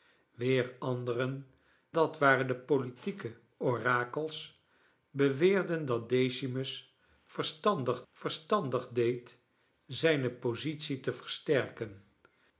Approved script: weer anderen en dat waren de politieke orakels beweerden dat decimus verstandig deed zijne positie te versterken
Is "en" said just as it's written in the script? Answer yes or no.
no